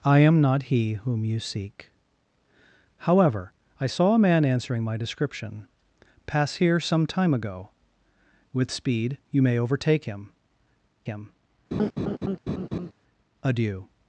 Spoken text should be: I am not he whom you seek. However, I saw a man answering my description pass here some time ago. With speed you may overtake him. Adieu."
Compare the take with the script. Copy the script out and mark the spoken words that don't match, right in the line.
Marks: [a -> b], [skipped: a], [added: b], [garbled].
I am not he whom you seek. However, I saw a man answering my description pass here some time ago. With speed you may overtake him. [added: him] Adieu."